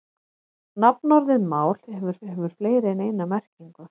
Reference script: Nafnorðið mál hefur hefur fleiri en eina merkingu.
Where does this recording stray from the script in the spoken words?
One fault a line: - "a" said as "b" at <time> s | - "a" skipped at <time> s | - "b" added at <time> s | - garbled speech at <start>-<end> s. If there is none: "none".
none